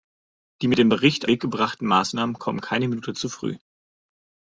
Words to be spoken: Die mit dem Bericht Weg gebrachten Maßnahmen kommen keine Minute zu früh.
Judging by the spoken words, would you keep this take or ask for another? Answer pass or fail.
pass